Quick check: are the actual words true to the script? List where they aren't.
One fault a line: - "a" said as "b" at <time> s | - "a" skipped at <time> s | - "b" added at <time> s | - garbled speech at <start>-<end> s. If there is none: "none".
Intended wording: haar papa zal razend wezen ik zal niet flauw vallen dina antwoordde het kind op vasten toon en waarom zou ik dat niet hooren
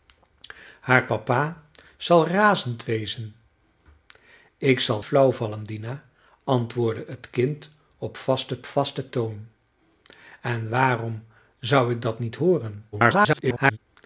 - "niet" skipped at 5.0 s
- "vasten" added at 8.6 s
- garbled speech at 12.9-13.8 s